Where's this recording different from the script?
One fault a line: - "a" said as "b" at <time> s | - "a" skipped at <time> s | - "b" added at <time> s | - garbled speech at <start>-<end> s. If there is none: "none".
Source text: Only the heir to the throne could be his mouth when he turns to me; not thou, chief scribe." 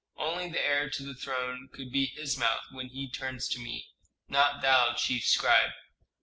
none